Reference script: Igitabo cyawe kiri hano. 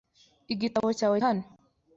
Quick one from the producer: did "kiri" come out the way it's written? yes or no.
no